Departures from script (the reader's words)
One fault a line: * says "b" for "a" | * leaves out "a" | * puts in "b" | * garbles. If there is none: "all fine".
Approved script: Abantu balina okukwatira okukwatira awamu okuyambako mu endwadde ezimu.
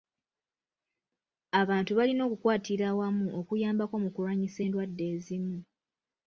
* leaves out "okukwatira"
* puts in "kulwanyisa"